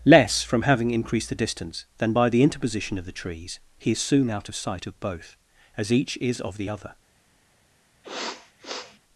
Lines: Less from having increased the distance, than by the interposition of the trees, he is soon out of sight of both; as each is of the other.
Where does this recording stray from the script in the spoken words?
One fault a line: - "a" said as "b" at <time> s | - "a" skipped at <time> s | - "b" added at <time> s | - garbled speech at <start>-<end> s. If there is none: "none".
none